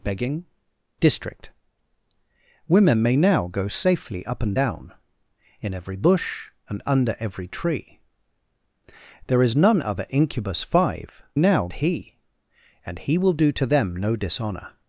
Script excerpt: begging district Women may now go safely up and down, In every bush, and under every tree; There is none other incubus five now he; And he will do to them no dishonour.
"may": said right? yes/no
yes